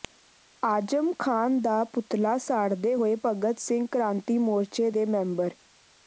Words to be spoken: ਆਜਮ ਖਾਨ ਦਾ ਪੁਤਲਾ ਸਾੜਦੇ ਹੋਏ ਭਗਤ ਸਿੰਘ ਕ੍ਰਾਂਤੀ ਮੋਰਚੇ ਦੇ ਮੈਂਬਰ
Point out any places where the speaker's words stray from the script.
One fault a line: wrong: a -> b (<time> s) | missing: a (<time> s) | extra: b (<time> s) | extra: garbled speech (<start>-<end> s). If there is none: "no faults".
no faults